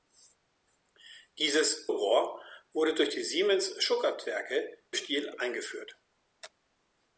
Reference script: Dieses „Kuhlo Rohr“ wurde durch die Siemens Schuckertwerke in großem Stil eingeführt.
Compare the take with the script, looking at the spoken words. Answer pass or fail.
fail